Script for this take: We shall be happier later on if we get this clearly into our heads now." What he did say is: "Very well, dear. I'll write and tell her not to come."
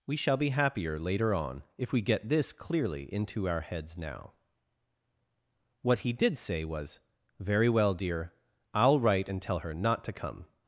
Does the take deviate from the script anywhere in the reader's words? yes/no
yes